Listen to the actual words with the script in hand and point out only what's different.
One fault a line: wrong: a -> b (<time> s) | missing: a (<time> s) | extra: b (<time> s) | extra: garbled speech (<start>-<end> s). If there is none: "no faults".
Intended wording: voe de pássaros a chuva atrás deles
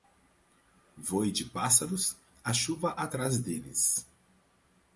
no faults